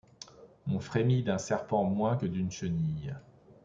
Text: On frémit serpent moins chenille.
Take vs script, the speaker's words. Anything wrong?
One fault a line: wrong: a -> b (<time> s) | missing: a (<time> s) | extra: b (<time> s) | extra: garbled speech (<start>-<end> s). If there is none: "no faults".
extra: d'un (1.2 s)
extra: que d'une (2.1 s)